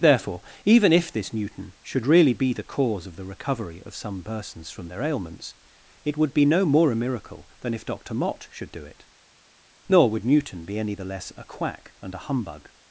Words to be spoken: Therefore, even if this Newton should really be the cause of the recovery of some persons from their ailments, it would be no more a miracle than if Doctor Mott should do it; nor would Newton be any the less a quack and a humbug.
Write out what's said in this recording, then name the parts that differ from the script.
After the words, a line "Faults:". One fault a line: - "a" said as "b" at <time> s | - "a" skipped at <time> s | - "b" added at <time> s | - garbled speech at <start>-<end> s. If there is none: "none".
Therefore, even if this Newton should really be the cause of the recovery of some persons from their ailments, it would be no more a miracle than if Doctor Mott should do it; nor would Newton be any the less a quack and a humbug.
Faults:
none